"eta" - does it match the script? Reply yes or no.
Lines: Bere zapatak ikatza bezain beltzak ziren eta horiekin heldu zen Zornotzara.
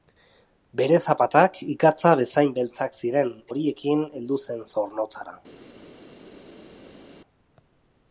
no